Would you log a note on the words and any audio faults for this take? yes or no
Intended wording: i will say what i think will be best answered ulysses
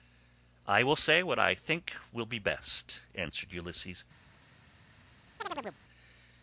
yes